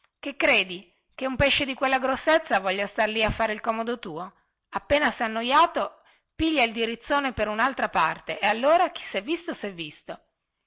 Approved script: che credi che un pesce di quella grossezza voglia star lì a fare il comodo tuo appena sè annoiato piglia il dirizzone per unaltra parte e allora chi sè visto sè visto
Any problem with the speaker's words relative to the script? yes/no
no